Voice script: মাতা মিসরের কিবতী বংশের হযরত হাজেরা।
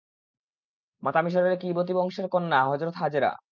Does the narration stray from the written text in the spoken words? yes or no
yes